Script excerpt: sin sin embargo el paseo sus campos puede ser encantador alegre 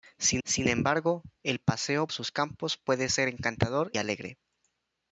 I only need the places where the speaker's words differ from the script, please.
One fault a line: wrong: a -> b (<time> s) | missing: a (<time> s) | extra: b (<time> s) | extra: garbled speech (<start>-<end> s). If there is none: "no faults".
no faults